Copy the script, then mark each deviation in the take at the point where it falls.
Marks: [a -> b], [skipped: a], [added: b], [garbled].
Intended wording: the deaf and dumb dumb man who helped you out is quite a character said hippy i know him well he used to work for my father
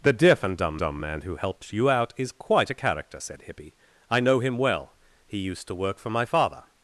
the deaf and dumb dumb man who helped you out is quite a character said hippy i know him well he used to work for my father